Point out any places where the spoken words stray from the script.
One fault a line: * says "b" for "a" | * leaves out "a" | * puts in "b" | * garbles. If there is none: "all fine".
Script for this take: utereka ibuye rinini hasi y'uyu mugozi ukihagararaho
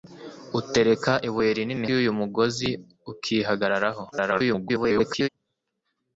* leaves out "hasi"
* garbles